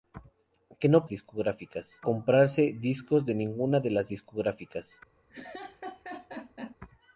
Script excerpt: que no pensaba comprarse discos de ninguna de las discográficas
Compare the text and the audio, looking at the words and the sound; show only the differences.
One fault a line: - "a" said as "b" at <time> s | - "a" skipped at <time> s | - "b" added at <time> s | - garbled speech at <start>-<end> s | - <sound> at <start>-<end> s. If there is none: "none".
- "pensaba" said as "discográficas" at 1.1 s
- laugh at 5.3-6.8 s